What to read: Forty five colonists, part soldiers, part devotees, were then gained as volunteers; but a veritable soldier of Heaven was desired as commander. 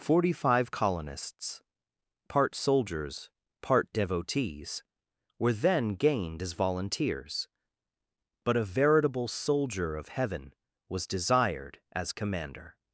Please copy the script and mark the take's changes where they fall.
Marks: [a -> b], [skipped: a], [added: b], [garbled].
Forty five colonists, part soldiers, part devotees, were then gained as volunteers; but a veritable soldier of Heaven was desired as commander.